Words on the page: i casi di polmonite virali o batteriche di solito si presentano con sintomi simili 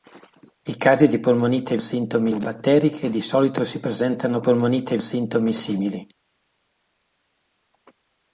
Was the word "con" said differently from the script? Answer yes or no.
yes